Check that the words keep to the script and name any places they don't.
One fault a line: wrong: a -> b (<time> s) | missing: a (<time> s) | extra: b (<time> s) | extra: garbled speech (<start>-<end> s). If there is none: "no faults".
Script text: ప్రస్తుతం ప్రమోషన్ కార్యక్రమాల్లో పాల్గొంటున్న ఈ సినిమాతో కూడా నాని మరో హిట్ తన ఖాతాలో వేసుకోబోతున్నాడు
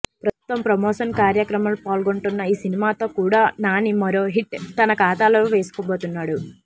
no faults